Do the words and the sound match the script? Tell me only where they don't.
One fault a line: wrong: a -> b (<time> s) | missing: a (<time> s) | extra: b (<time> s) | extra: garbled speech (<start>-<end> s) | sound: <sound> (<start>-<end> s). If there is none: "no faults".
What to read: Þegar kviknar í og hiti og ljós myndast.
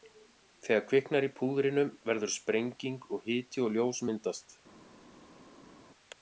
extra: púðrinu verður sprenging (1.4 s)